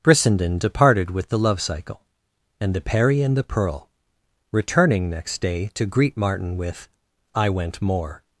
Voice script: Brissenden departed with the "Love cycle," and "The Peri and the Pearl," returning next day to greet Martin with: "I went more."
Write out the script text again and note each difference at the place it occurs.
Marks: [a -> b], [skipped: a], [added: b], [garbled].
Brissenden departed with the "Love cycle," and "The Peri and the Pearl," returning next day to greet Martin with: "I went more."